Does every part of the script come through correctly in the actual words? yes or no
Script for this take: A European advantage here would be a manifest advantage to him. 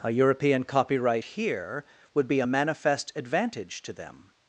no